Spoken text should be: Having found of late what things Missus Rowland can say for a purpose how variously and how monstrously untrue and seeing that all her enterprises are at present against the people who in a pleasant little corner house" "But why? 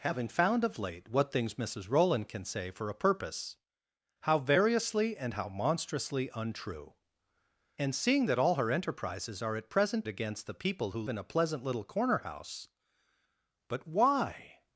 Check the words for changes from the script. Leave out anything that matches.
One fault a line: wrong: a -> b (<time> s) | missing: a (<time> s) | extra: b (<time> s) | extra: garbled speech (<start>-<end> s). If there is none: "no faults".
no faults